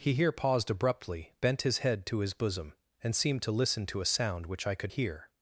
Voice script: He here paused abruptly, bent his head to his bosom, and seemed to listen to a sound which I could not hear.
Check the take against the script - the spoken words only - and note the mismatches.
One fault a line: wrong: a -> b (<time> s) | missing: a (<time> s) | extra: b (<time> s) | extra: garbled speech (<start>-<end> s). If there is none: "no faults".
missing: not (4.9 s)